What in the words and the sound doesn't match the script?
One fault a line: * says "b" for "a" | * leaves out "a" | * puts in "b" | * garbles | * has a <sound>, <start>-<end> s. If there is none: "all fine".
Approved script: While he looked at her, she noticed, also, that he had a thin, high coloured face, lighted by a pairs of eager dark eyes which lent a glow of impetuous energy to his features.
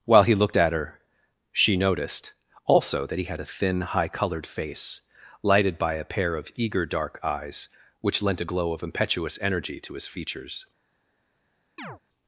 * says "pair" for "pairs"
* has a chirp, 11.8-12.0 s